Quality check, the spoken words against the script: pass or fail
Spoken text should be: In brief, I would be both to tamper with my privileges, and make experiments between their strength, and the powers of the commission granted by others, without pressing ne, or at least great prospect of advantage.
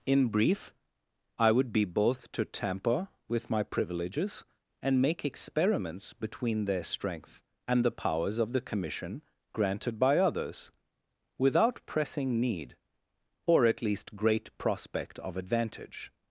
fail